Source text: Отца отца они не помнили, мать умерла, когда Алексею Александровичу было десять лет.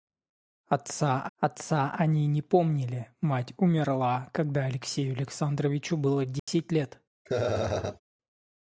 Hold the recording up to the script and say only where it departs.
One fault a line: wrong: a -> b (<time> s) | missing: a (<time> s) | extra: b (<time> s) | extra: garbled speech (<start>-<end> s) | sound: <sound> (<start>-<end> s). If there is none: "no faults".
sound: dropout (6.4-6.5 s)
sound: laugh (7.2-8.0 s)